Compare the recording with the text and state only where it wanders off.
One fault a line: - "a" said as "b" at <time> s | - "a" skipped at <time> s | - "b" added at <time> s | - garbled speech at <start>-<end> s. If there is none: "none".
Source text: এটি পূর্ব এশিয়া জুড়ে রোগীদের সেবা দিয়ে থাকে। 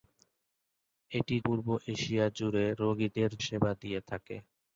none